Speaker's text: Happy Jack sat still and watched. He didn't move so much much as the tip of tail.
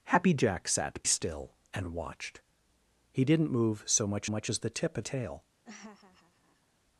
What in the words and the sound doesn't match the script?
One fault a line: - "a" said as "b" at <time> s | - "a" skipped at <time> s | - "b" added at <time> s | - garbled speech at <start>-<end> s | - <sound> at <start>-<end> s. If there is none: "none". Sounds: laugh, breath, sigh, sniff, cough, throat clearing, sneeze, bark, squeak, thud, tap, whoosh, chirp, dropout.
- laugh at 5.6-6.7 s